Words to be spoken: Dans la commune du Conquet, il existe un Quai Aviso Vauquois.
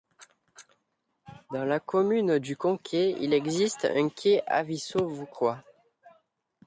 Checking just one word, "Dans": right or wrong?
right